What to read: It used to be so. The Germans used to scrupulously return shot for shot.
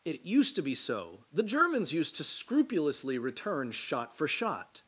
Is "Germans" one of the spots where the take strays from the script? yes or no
no